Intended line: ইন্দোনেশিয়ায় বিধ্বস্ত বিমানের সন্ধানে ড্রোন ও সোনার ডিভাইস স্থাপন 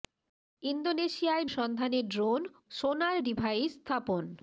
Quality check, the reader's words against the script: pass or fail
fail